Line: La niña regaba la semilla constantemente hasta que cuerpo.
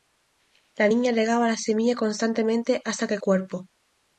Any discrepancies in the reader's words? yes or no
no